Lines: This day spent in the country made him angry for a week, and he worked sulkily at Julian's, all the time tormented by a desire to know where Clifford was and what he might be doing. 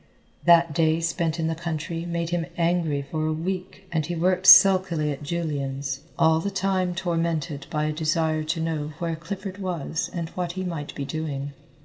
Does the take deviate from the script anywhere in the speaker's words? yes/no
yes